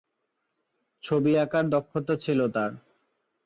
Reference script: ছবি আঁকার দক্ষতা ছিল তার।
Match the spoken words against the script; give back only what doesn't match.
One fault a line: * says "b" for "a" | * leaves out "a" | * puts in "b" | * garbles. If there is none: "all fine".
all fine